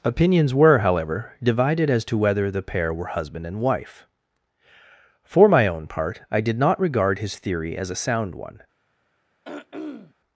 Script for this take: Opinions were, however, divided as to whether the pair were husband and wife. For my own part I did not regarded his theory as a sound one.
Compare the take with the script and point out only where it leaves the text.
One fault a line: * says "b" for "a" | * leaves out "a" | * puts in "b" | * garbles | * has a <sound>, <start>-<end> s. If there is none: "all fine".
* says "regard" for "regarded"
* has a throat clearing, 9.4-10.1 s